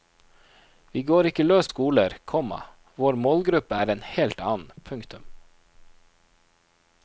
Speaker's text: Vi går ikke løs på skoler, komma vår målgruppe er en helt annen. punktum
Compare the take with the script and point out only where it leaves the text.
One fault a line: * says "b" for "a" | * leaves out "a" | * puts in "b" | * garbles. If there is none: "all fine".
* leaves out "på"